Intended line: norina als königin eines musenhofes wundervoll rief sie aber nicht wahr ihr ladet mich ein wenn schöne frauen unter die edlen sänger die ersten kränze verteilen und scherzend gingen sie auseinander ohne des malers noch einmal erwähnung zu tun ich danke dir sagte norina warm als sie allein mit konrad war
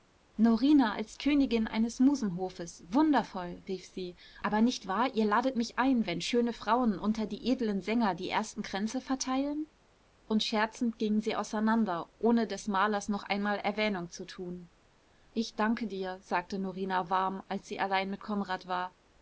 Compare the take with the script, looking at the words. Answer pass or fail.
pass